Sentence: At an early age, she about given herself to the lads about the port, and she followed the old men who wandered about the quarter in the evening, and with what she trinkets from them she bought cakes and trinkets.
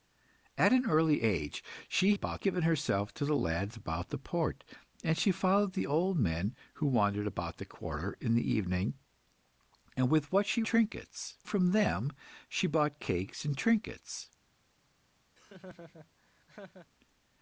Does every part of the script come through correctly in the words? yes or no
yes